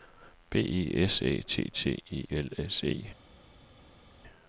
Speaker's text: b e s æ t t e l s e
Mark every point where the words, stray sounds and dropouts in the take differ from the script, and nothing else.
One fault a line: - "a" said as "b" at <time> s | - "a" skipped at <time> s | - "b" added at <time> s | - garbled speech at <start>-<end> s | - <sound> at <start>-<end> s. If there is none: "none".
none